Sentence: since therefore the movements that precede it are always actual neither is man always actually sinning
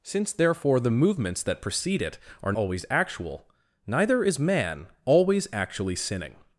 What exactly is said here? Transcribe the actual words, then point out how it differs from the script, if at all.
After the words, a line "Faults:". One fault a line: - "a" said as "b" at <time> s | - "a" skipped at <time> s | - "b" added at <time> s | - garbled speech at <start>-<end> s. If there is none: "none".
since therefore the movements that precede it are always actual neither is man always actually sinning
Faults:
none